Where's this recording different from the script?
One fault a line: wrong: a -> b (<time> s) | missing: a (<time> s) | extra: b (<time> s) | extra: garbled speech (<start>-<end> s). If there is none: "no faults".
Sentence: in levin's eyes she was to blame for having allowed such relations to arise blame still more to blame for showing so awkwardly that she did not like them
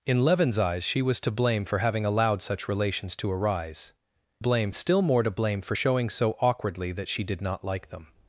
no faults